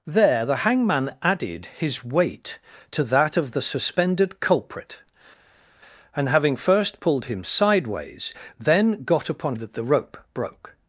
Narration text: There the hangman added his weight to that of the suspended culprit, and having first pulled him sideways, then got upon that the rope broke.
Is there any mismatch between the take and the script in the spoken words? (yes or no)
no